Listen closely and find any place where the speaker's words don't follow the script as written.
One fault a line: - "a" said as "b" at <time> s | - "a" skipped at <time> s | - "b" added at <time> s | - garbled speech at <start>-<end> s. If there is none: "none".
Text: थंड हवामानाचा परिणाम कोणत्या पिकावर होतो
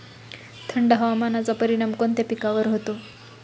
none